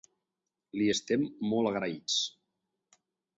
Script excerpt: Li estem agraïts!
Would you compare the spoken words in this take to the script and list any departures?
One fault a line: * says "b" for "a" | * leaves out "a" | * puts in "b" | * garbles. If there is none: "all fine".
* puts in "molt"